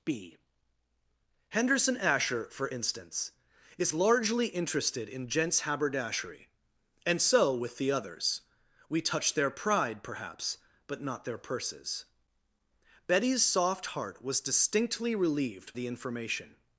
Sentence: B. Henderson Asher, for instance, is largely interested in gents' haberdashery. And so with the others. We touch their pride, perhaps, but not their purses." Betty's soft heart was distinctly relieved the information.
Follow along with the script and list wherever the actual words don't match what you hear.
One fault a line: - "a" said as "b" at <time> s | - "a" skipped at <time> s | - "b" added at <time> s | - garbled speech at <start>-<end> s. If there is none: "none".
none